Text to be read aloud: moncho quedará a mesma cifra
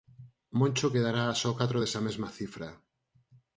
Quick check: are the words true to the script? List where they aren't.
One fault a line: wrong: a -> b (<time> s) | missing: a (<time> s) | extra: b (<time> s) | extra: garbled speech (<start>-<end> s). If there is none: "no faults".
extra: só catro desa (1.4 s)